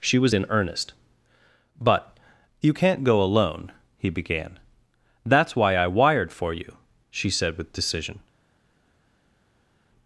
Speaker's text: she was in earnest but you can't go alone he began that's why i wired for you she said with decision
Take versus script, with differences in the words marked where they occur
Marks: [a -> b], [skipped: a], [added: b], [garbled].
she was in earnest but you can't go alone he began that's why i wired for you she said with decision